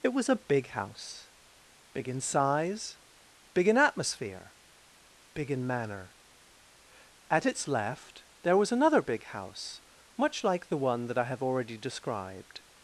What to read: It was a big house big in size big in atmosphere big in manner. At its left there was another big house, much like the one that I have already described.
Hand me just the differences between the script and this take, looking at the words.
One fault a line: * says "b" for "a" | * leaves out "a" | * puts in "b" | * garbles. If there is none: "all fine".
all fine